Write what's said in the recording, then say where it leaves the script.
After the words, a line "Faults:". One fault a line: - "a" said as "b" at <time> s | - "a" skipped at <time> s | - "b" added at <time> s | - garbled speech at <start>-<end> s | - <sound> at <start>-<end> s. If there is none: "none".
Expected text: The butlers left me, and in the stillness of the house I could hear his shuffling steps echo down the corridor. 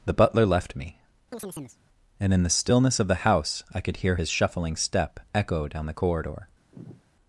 The butler left me, and in the stillness of the house I could hear his shuffling step echo down the corridor.
Faults:
- "butlers" said as "butler" at 0.1 s
- chirp at 1.3-1.8 s
- "steps" said as "step" at 4.8 s
- sigh at 6.7-7.0 s